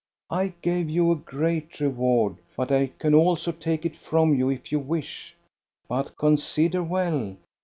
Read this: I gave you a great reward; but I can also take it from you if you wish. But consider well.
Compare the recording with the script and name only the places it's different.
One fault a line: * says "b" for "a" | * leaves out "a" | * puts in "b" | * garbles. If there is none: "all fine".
all fine